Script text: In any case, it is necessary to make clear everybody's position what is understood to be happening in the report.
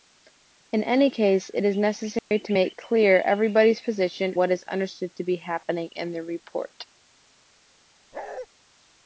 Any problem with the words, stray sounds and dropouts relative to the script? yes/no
yes